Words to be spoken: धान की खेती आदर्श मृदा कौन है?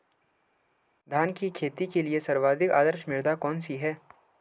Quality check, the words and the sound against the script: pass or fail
fail